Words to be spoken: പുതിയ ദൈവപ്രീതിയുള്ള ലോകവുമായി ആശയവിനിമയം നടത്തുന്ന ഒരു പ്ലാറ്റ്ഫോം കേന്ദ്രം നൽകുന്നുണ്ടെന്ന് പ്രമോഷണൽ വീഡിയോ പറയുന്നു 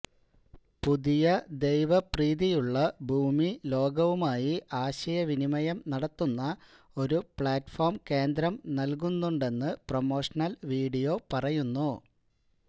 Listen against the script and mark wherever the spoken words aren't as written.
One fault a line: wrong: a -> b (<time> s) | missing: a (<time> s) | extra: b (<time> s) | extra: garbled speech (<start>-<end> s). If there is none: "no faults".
extra: ഭൂമി (3.1 s)